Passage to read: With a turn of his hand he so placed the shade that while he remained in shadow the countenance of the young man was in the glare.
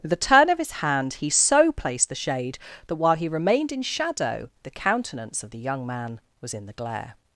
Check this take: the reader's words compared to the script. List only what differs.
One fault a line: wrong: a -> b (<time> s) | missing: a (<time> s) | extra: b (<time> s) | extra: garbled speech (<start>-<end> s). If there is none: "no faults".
no faults